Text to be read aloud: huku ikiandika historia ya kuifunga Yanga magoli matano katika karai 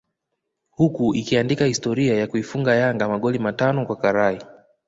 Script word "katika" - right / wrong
wrong